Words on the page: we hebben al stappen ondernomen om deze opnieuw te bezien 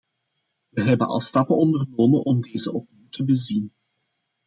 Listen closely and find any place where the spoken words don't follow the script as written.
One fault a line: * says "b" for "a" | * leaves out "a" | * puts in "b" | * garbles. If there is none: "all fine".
all fine